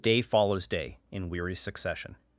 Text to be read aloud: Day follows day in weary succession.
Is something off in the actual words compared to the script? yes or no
no